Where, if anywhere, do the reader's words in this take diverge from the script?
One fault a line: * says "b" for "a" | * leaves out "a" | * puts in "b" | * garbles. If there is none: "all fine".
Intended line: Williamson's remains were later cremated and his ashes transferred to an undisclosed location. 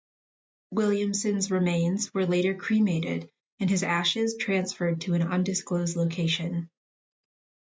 all fine